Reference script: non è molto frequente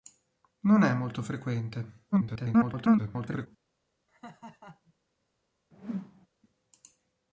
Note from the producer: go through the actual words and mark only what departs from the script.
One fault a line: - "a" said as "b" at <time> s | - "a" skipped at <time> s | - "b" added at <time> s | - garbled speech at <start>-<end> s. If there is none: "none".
- garbled speech at 2.1-3.5 s